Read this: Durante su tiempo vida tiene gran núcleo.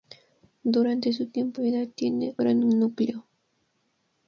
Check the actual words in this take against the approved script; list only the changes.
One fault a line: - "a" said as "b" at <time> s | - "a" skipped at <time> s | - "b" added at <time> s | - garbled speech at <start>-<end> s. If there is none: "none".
none